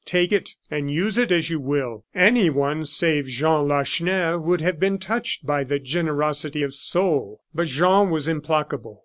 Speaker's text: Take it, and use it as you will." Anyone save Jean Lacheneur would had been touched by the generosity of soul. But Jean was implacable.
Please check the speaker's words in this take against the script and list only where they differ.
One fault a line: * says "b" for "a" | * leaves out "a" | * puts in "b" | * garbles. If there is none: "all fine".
* says "have" for "had"